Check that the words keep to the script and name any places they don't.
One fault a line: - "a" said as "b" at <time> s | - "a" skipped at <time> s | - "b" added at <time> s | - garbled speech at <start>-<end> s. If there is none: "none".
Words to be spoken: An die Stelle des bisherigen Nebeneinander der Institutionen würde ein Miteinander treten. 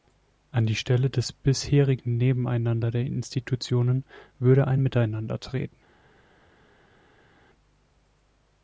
none